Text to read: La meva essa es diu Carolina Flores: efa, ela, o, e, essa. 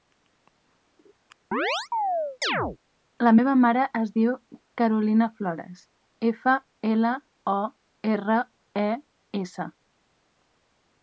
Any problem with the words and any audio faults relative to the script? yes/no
yes